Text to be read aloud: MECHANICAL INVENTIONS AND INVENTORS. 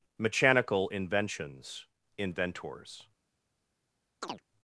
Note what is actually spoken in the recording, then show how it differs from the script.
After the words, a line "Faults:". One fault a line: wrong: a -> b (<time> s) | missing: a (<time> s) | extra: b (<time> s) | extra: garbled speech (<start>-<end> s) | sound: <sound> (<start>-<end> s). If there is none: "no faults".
MECHANICAL INVENTIONS INVENTORS.
Faults:
missing: AND (1.9 s)
sound: chirp (4.2-4.4 s)